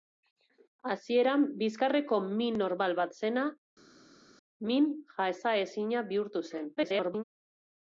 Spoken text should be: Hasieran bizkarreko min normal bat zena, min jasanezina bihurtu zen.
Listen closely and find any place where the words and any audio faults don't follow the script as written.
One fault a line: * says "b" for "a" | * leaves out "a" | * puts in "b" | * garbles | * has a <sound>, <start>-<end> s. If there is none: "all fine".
* garbles